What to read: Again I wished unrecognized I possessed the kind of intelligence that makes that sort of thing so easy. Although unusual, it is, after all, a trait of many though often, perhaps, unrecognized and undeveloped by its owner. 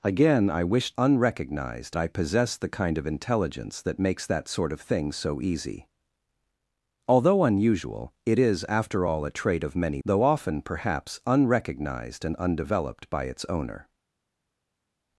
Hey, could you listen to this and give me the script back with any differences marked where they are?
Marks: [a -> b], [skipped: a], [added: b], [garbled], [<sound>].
Again I wished unrecognized I possessed the kind of intelligence that makes that sort of thing so easy. Although unusual, it is, after all, a trait of many though often, perhaps, unrecognized and undeveloped by its owner.